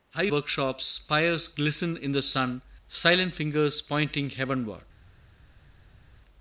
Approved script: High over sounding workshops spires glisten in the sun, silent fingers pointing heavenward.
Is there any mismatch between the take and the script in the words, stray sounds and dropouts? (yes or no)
yes